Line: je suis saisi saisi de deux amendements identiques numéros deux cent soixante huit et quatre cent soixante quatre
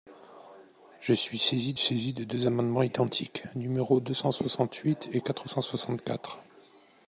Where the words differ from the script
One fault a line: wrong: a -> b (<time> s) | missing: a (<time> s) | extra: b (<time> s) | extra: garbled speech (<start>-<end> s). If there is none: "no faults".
no faults